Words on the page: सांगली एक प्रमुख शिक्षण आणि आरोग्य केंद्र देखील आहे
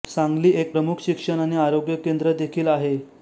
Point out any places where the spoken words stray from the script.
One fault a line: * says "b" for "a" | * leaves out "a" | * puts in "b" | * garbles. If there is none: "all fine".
all fine